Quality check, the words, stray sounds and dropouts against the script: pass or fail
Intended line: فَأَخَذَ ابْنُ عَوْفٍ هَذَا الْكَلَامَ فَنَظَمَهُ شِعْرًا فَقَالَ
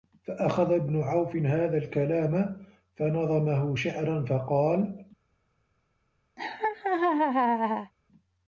fail